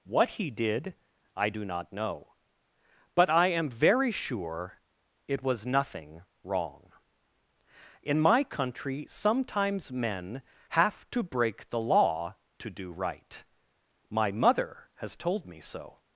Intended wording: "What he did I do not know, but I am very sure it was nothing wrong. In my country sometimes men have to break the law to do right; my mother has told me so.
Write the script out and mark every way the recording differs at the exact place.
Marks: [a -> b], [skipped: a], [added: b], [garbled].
"What he did I do not know, but I am very sure it was nothing wrong. In my country sometimes men have to break the law to do right; my mother has told me so.